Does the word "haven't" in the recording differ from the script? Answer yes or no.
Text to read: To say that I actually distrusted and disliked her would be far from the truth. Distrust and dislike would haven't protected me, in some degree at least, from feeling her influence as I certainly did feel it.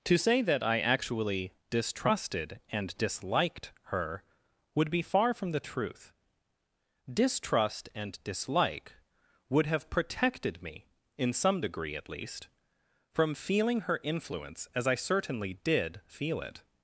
yes